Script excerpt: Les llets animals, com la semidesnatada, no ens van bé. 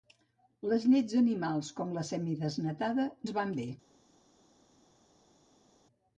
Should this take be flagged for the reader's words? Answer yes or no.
yes